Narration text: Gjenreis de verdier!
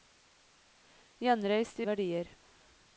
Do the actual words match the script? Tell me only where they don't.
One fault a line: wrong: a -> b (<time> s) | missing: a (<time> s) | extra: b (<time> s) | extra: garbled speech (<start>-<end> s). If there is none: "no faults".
no faults